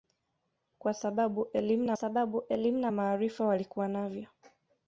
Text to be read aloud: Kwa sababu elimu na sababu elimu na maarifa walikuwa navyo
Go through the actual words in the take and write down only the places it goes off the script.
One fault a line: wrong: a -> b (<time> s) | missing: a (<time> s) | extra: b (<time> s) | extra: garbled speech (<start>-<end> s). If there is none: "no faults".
no faults